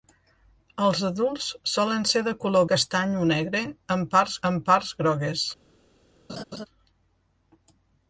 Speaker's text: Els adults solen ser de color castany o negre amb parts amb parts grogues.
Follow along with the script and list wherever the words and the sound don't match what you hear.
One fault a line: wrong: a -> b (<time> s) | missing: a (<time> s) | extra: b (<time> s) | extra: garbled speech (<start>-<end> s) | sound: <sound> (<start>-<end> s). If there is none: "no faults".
sound: laugh (6.3-6.7 s)